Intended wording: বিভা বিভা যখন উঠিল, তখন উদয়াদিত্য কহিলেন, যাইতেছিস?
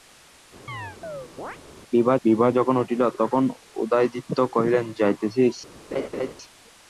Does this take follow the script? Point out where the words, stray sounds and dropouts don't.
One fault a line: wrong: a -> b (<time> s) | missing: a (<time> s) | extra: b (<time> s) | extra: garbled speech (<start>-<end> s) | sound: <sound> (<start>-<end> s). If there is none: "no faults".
sound: chirp (0.7-1.6 s)
sound: laugh (5.9-6.3 s)